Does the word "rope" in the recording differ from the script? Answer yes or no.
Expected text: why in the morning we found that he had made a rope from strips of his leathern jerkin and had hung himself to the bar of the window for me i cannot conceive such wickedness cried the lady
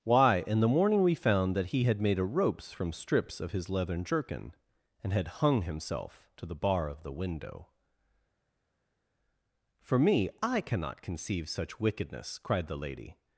yes